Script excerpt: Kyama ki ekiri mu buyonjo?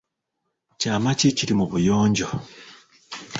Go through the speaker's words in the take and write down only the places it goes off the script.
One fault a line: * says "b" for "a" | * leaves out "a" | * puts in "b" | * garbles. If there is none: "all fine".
all fine